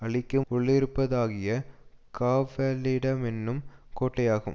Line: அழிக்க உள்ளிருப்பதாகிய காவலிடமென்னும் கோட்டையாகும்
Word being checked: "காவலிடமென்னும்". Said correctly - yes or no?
yes